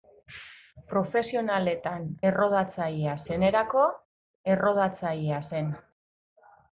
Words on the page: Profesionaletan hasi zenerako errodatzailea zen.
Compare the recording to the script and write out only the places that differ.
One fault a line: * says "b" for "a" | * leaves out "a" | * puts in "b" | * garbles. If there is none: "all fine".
* says "errodatzailea" for "hasi"